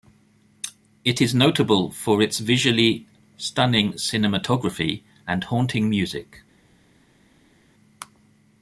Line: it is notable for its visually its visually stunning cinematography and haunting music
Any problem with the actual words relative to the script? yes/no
yes